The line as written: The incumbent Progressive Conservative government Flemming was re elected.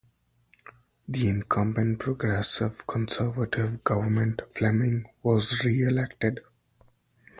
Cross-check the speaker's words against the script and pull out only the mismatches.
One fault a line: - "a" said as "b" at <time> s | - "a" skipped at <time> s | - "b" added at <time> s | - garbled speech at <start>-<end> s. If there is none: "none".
none